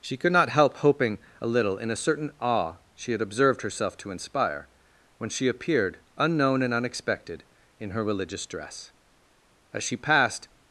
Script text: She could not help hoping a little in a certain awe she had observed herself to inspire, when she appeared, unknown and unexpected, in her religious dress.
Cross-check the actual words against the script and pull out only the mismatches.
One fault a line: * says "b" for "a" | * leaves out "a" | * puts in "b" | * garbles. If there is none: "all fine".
* puts in "As she passed"